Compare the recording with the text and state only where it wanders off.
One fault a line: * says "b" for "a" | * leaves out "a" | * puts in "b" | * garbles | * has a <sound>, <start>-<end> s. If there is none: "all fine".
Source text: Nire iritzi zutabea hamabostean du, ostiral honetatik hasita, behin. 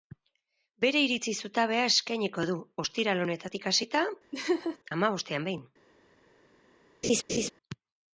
* says "Bere" for "Nire"
* says "eskainiko" for "hamabostean"
* has a laugh, 4.3-4.8 s
* puts in "hamabostean"
* has a laugh, 7.0-7.5 s